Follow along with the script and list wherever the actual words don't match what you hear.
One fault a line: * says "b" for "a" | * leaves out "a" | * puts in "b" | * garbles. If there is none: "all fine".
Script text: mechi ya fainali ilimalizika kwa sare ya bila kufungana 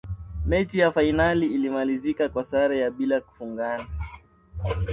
all fine